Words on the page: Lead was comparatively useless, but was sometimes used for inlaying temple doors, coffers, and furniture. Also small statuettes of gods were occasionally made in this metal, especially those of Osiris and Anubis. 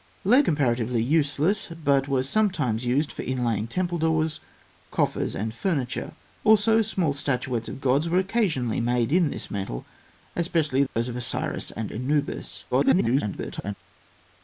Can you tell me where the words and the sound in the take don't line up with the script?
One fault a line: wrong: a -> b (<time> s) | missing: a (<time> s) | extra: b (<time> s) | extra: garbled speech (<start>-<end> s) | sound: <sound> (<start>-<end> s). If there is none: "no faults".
missing: was (0.5 s)
sound: dropout (10.9-11.0 s)
extra: garbled speech (12.7-13.7 s)